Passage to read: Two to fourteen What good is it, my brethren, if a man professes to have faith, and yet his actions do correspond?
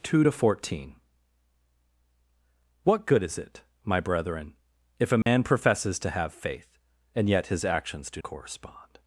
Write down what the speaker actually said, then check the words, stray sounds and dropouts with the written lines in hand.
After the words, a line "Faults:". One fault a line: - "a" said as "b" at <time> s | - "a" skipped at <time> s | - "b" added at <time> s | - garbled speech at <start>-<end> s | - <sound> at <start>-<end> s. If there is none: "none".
Two to fourteen What good is it, my brethren, if a man professes to have faith, and yet his actions do correspond?
Faults:
- dropout at 5.2-5.3 s